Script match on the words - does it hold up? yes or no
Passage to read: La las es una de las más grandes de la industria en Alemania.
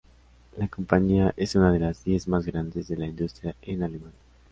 no